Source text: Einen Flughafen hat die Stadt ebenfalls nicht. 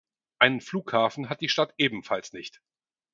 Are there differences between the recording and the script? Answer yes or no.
no